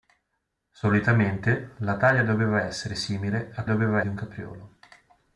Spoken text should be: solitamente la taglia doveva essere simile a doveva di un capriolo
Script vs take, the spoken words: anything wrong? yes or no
no